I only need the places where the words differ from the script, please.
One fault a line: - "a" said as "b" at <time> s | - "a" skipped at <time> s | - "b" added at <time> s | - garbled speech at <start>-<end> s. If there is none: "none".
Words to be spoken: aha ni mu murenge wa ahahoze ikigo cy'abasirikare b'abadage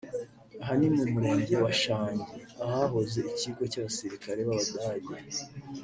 - "shangi" added at 1.8 s